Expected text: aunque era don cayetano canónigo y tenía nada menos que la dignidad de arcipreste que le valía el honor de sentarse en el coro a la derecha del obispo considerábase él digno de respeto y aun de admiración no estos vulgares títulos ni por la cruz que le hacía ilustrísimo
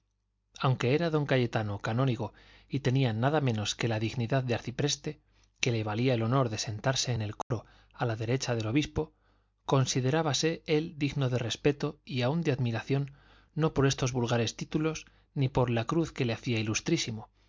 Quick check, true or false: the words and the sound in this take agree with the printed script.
false